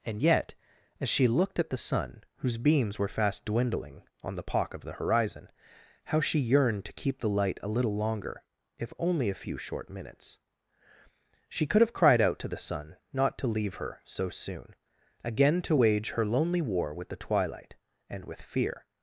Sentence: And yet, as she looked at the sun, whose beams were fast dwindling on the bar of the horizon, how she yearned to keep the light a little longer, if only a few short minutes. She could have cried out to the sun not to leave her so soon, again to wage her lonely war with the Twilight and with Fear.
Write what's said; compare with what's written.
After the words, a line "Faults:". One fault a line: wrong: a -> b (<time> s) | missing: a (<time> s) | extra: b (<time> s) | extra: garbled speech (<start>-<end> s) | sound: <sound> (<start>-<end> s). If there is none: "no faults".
And yet, as she looked at the sun, whose beams were fast dwindling on the pock of the horizon, how she yearned to keep the light a little longer, if only a few short minutes. She could have cried out to the sun not to leave her so soon, again to wage her lonely war with the Twilight and with Fear.
Faults:
wrong: bar -> pock (4.4 s)